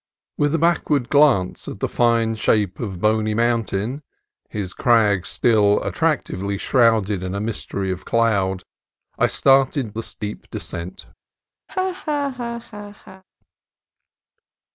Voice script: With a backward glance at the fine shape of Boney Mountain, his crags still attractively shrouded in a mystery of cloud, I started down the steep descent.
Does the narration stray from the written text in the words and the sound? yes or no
yes